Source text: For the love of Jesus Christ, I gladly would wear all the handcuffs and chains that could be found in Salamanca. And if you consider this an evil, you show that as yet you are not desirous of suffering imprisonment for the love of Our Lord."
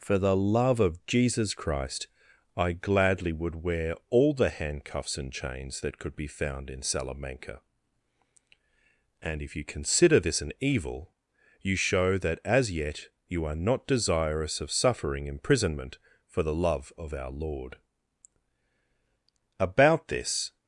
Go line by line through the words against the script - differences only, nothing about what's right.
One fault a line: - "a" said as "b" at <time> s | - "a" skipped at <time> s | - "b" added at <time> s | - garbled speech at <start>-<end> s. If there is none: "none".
- "About this" added at 19.6 s